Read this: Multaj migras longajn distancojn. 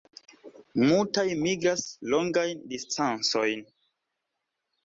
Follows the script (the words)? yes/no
yes